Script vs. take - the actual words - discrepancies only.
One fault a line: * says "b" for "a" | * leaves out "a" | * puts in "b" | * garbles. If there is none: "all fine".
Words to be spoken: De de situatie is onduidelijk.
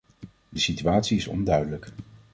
all fine